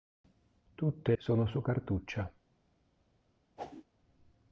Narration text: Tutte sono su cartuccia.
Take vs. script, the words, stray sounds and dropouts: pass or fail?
fail